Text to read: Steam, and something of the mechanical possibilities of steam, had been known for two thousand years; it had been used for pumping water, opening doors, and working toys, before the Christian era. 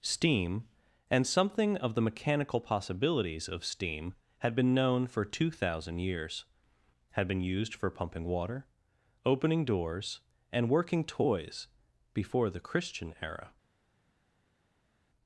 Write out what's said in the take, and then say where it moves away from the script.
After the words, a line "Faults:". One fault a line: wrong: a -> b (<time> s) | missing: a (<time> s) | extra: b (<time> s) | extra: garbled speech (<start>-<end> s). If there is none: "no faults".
Steam, and something of the mechanical possibilities of steam, had been known for two thousand years; had been used for pumping water, opening doors, and working toys, before the Christian era.
Faults:
missing: it (6.5 s)